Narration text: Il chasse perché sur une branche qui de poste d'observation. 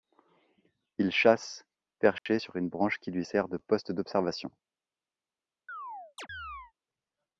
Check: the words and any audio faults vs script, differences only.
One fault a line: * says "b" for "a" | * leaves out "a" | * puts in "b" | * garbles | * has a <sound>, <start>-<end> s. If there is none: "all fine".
* has a dropout, 2.2-2.3 s
* puts in "lui sert"
* has a chirp, 5.7-6.7 s